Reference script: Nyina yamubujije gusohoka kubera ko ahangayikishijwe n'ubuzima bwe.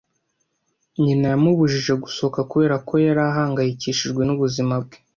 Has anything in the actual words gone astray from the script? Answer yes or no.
yes